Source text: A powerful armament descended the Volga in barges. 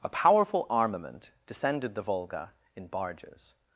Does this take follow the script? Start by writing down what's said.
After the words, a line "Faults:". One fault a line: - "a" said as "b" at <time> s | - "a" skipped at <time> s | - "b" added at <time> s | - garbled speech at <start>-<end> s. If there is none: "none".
A powerful armament descended the Volga in barges.
Faults:
none